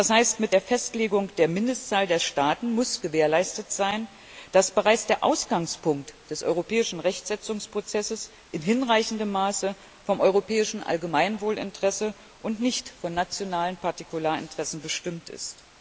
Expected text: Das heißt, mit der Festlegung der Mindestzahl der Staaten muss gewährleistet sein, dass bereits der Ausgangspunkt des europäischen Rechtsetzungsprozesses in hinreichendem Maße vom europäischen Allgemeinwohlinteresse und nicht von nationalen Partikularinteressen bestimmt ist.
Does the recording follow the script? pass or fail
pass